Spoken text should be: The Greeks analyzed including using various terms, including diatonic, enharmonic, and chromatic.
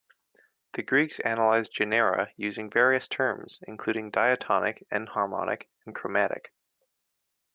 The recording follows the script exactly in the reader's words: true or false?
false